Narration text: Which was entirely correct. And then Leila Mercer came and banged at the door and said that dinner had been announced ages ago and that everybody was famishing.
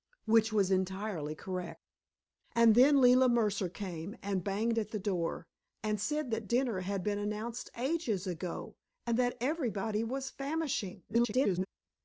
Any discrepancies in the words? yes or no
yes